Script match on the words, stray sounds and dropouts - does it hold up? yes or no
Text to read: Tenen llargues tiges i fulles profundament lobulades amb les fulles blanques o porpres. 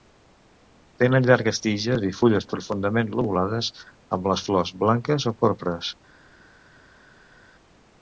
no